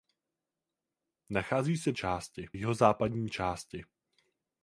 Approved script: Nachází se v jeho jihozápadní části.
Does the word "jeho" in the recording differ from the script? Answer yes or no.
yes